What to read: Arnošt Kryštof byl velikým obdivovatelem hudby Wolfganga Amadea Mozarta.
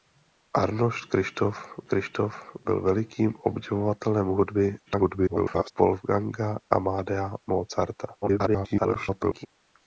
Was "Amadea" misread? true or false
false